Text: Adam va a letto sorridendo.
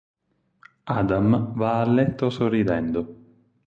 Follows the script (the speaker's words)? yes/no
yes